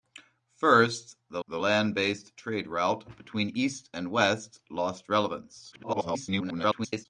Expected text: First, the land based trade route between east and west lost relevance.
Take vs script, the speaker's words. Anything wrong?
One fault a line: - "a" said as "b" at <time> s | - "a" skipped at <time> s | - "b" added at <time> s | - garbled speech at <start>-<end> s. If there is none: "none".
- "the" added at 1.5 s
- garbled speech at 5.7-7.1 s